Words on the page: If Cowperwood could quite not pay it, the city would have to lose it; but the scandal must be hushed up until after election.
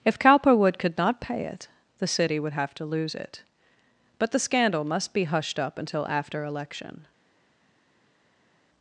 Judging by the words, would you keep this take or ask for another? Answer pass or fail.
fail